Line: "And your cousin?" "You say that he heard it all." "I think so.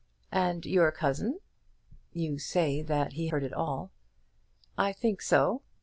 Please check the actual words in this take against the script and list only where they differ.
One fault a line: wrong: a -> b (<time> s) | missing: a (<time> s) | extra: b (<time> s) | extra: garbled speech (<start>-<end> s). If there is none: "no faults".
no faults